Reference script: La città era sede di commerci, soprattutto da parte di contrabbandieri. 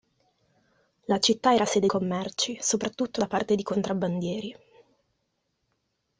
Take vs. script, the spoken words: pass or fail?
fail